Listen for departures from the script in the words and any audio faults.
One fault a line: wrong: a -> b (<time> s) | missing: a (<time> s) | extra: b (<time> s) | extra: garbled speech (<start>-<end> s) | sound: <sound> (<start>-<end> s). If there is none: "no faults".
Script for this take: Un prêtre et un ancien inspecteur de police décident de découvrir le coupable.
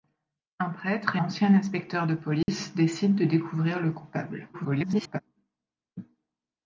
missing: un (1.2 s)
sound: dropout (2.4-2.5 s)
extra: garbled speech (4.5-5.2 s)